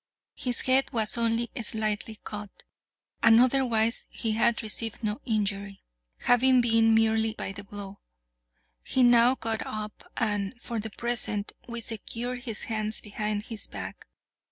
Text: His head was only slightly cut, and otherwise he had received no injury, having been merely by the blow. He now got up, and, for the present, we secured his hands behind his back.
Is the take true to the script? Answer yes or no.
yes